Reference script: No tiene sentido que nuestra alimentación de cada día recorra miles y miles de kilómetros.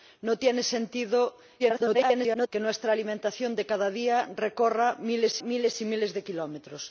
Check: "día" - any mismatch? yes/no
no